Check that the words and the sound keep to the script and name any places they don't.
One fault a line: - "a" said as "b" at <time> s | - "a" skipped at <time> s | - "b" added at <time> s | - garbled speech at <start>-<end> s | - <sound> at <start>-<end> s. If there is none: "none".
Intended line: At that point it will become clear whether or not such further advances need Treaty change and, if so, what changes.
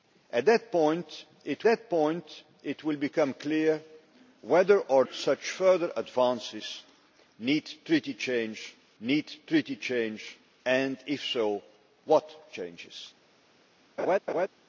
- "that point it" added at 1.6 s
- "not" skipped at 5.0 s
- "need Treaty change" added at 9.0 s
- laugh at 14.0-14.5 s